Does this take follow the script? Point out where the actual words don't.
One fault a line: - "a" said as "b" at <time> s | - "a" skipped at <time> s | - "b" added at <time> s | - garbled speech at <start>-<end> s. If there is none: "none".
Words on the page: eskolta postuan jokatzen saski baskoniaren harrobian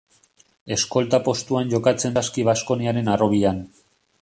none